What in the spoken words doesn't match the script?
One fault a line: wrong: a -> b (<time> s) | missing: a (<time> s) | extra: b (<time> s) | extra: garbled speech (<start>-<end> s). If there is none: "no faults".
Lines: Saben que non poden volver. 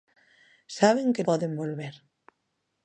missing: non (1.3 s)